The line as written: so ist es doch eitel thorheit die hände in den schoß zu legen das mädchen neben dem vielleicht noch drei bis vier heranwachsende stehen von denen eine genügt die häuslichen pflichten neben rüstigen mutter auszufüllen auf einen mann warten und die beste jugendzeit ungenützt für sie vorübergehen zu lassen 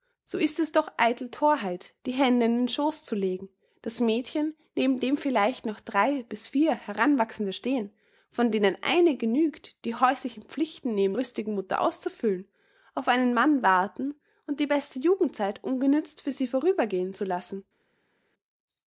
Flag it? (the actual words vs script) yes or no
no